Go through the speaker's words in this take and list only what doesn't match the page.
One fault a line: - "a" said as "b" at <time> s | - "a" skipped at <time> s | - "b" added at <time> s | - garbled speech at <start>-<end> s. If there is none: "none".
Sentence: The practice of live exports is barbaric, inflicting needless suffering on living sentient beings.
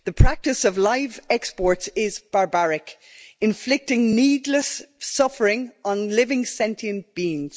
none